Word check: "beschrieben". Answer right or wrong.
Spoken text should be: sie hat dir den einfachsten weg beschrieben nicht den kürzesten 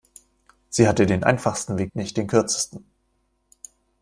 wrong